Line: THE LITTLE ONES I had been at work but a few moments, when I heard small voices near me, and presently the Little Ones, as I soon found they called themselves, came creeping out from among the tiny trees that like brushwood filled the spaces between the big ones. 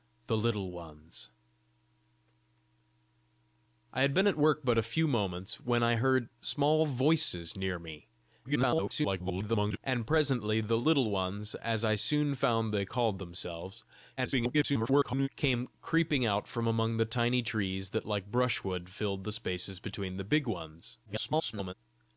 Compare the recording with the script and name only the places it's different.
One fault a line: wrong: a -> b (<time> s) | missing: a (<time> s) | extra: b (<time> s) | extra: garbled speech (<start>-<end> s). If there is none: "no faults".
extra: garbled speech (8.4-9.8 s)
extra: garbled speech (14.2-15.3 s)
extra: garbled speech (21.1-21.7 s)